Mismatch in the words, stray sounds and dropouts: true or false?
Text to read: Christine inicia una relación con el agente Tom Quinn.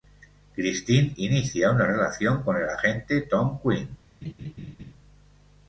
true